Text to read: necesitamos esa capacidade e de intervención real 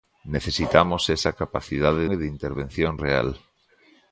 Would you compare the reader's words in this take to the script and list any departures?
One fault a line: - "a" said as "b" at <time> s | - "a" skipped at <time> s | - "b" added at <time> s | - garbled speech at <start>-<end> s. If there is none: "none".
none